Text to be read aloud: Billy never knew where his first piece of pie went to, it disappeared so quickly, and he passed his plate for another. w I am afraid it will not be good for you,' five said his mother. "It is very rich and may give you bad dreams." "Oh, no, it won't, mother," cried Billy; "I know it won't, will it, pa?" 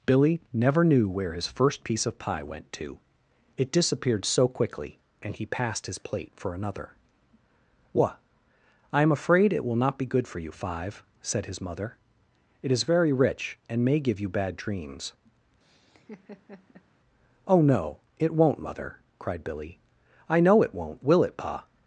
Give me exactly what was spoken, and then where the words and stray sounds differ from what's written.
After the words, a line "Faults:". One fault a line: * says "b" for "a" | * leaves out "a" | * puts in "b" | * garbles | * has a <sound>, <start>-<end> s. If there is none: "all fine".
Billy never knew where his first piece of pie went to, it disappeared so quickly, and he passed his plate for another. what I am afraid it will not be good for you,' five said his mother. "It is very rich and may give you bad dreams." "Oh, no, it won't, mother," cried Billy; "I know it won't, will it, pa?"
Faults:
* says "what" for "w"
* has a laugh, 15.6-16.9 s